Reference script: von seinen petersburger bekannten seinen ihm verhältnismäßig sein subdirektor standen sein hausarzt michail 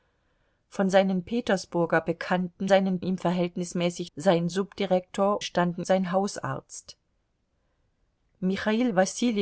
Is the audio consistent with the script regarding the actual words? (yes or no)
yes